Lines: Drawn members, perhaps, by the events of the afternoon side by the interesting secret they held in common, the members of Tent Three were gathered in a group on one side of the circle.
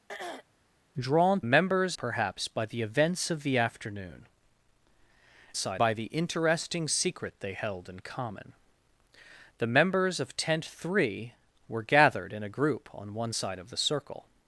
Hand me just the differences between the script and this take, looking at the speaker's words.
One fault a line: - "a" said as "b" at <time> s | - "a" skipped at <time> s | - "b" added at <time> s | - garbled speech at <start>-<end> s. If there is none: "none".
none